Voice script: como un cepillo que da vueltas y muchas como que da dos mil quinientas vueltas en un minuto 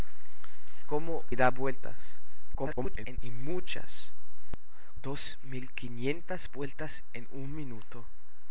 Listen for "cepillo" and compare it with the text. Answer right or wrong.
wrong